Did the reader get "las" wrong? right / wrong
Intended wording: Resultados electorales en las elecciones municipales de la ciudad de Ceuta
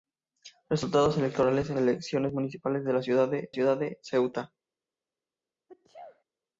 wrong